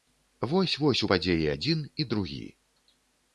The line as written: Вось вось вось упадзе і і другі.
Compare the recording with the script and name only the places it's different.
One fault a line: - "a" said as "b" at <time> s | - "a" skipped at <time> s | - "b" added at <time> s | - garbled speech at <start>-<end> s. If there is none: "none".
- "вось" skipped at 1.0 s
- "адзін" added at 1.5 s